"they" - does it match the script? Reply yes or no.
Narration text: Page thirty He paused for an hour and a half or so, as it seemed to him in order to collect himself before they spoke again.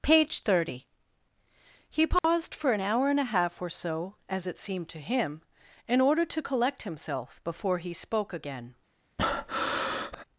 no